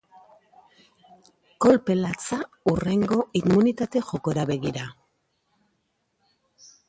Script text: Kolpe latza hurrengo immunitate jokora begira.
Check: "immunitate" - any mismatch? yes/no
no